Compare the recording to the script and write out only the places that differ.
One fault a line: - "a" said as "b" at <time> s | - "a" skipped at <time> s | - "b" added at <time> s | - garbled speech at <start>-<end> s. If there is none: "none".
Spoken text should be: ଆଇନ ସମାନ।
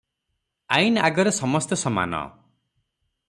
- "ଆଗରେ ସମସ୍ତେ" added at 1.1 s